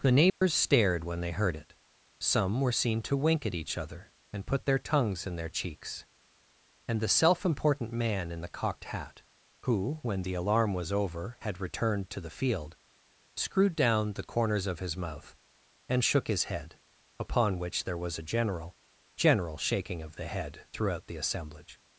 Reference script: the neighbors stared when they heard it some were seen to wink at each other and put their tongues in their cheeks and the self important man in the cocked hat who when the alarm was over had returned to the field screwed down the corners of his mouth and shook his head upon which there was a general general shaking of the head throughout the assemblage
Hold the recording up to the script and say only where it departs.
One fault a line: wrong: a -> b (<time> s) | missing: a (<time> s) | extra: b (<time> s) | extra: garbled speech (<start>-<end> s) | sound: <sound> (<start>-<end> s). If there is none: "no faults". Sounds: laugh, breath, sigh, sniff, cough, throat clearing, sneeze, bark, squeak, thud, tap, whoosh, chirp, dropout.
sound: dropout (0.3-0.4 s)